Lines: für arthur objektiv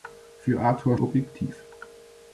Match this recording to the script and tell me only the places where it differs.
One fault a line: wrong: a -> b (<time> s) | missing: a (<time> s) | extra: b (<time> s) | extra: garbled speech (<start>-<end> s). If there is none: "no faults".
no faults